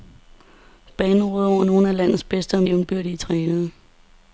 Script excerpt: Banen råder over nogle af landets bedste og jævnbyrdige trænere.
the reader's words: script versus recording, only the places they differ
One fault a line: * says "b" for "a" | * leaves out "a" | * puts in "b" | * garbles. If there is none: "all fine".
all fine